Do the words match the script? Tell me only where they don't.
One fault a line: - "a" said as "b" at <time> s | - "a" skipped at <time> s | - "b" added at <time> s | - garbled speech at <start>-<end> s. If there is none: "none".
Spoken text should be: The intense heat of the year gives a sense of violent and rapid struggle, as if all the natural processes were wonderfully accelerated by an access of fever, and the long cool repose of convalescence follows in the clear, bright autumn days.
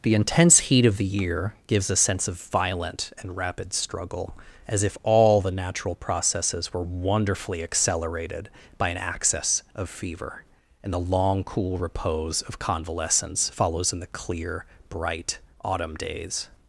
none